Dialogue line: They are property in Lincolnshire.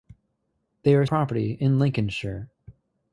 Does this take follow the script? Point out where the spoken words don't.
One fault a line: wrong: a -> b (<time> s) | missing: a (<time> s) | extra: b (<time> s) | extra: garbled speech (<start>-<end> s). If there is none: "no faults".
no faults